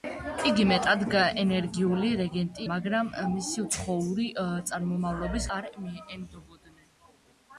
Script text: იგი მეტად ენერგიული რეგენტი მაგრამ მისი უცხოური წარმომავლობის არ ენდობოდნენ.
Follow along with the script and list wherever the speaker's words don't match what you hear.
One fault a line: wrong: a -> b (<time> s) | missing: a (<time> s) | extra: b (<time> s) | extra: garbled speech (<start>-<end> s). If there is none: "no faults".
no faults